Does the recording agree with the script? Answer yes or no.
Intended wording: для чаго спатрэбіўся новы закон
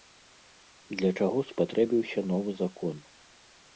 yes